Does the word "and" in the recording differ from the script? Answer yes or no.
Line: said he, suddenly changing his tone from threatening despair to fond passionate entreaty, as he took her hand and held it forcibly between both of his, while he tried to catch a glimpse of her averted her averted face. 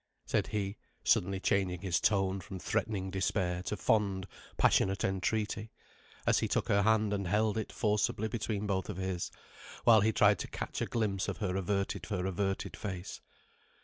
no